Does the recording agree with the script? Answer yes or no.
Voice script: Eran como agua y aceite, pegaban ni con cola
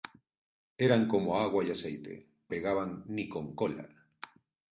yes